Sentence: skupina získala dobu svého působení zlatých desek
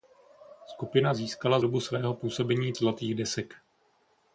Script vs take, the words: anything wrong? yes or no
no